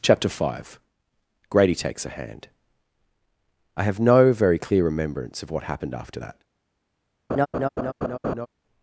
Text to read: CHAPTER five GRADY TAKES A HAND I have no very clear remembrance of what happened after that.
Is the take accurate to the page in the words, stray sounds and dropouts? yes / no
no